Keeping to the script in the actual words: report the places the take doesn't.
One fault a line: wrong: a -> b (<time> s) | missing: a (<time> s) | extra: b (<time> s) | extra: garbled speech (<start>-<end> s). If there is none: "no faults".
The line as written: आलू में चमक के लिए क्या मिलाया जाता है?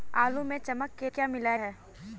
missing: लिए (1.1 s)
missing: जाता (1.6 s)